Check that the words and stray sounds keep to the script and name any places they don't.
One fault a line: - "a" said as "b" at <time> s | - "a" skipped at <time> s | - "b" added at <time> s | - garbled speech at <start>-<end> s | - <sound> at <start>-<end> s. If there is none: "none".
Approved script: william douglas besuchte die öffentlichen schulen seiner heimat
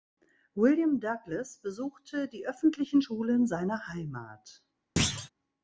- thud at 5.0-5.3 s